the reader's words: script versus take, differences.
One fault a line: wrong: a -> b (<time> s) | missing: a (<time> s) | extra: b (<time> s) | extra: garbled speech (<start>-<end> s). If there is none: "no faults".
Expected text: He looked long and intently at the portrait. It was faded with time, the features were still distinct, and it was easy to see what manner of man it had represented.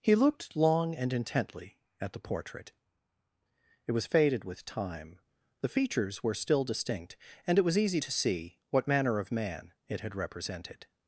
no faults